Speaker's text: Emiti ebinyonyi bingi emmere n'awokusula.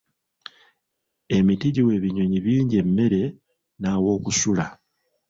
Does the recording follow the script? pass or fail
fail